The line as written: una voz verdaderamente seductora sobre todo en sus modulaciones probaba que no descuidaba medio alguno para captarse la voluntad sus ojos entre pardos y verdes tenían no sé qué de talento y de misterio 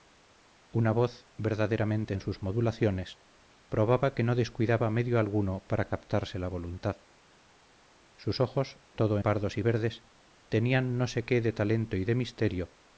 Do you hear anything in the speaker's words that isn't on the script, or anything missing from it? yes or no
yes